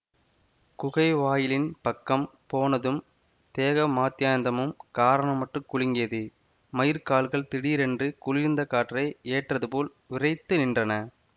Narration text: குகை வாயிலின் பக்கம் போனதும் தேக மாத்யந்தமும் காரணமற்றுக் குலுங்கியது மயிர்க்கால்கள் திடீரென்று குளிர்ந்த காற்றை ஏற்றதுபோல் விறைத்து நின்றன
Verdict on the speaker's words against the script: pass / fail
pass